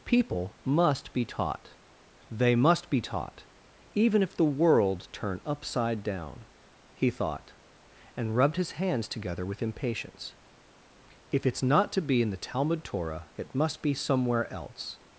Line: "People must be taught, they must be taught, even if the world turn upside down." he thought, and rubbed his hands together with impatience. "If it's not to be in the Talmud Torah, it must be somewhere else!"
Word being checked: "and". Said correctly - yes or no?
yes